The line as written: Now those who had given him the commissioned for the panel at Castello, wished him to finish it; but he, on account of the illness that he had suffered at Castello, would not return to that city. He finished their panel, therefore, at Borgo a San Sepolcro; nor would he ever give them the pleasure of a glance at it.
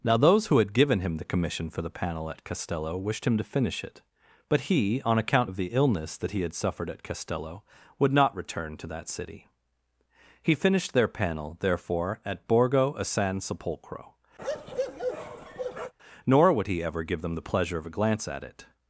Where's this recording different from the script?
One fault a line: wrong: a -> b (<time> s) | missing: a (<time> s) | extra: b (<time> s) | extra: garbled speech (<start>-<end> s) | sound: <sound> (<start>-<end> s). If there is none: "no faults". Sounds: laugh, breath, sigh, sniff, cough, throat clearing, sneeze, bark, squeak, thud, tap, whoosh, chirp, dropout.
wrong: commissioned -> commission (1.2 s)
sound: bark (14.4-15.9 s)